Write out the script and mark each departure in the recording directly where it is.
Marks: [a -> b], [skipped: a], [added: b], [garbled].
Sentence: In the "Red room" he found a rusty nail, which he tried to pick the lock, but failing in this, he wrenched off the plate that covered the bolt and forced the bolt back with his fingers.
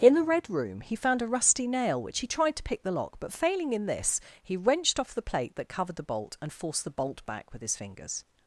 In the "Red room" he found a rusty nail, which he tried to pick the lock, but failing in this, he wrenched off the plate that covered the bolt and forced the bolt back with his fingers.